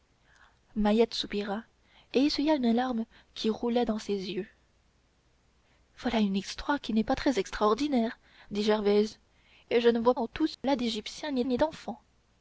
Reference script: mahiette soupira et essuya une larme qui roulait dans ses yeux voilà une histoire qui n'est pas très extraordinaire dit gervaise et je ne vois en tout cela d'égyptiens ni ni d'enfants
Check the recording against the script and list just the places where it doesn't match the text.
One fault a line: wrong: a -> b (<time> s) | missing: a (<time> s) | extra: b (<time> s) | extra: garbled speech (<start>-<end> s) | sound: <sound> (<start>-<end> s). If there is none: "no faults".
sound: dropout (10.5-10.6 s)